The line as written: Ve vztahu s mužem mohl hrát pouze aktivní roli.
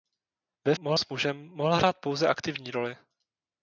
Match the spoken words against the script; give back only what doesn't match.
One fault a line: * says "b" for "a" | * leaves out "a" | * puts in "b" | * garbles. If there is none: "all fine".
* says "mohl" for "vztahu"